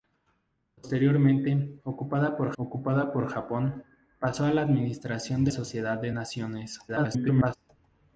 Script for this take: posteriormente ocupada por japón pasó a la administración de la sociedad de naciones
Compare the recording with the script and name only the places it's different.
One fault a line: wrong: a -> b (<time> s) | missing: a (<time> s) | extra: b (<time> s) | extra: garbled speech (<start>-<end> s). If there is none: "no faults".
extra: ocupada por (2.6 s)
missing: la (5.5 s)
extra: garbled speech (6.9-7.6 s)